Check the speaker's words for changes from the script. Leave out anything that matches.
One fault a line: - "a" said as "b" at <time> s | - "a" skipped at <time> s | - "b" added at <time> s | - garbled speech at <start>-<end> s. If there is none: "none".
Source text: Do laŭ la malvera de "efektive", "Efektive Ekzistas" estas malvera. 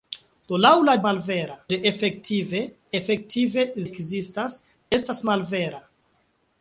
none